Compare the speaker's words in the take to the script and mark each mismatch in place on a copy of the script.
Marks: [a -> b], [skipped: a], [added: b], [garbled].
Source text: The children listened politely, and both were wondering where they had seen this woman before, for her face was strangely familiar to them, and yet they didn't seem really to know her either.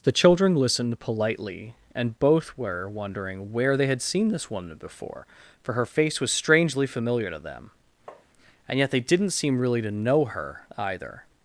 The children listened politely, and both were wondering where they had seen this woman before, for her face was strangely familiar to them, and yet they didn't seem really to know her either.